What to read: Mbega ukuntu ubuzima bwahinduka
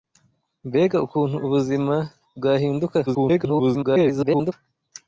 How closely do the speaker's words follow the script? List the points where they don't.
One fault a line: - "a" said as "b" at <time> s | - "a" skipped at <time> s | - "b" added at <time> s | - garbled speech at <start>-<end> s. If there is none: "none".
- garbled speech at 3.1-4.5 s